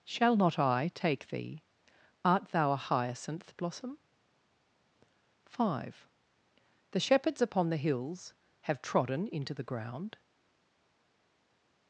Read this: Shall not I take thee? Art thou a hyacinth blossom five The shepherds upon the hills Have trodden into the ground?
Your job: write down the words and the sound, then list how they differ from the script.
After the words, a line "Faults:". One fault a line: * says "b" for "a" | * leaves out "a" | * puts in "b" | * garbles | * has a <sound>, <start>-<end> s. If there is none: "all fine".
Shall not I take thee? Art thou a hyacinth blossom five The shepherds upon the hills Have trodden into the ground?
Faults:
all fine